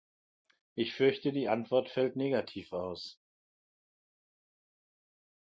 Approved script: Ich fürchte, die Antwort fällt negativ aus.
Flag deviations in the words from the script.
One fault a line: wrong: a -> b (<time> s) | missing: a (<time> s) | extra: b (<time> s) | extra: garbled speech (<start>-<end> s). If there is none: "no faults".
no faults